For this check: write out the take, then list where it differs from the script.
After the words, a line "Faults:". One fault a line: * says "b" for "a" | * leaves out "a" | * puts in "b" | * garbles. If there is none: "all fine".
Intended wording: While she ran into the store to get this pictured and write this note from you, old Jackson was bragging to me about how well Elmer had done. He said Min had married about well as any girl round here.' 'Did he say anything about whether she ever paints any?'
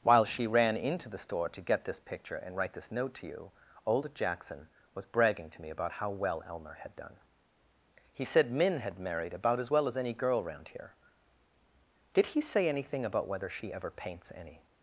While she ran into the store to get this picture and write this note to you, old Jackson was bragging to me about how well Elmer had done. He said Min had married about as well as any girl round here.' 'Did he say anything about whether she ever paints any?'
Faults:
* says "picture" for "pictured"
* says "to" for "from"
* puts in "as"